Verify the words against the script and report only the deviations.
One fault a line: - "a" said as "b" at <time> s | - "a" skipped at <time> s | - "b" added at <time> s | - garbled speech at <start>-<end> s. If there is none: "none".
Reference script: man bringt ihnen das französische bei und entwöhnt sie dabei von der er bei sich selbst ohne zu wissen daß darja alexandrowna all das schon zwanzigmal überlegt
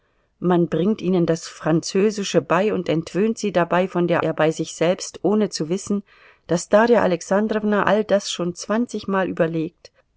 none